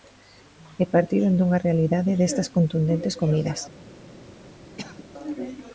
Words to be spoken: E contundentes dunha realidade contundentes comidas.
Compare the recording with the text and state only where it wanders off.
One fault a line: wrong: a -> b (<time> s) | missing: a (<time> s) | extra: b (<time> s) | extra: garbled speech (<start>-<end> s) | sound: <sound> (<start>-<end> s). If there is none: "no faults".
wrong: contundentes -> partiron (0.9 s)
extra: destas (2.2 s)
sound: cough (4.8-5.1 s)